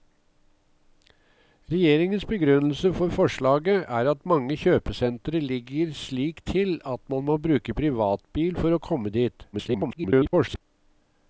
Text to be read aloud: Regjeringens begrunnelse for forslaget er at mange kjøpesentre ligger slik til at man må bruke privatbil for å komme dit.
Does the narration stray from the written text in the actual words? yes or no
yes